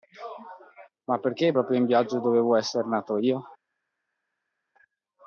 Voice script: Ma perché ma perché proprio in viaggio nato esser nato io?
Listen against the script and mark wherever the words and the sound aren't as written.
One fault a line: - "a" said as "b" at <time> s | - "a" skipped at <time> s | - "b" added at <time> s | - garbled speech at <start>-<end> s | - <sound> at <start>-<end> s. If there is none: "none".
- "ma perché" skipped at 1.5 s
- "nato" said as "dovevo" at 2.2 s